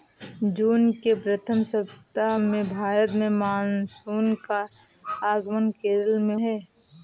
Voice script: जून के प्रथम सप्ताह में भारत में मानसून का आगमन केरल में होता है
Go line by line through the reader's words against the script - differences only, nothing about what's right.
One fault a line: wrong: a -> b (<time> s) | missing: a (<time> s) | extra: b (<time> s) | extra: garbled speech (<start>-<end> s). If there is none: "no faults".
missing: होता (6.4 s)